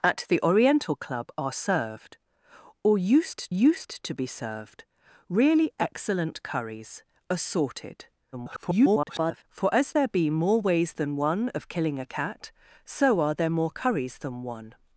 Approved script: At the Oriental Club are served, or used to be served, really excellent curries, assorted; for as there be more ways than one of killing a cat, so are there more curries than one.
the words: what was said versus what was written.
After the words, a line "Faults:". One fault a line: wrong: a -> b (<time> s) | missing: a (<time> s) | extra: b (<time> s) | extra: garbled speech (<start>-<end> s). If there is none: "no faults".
At the Oriental Club are served, or used used to be served, really excellent curries, assorted; [garbled] for as there be more ways than one of killing a cat, so are there more curries than one.
Faults:
extra: used (3.5 s)
extra: garbled speech (8.3-9.4 s)